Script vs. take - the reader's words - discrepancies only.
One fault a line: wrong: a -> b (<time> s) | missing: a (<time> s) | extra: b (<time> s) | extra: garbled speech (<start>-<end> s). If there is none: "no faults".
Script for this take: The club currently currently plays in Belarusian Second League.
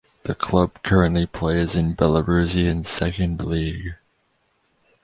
missing: currently (1.3 s)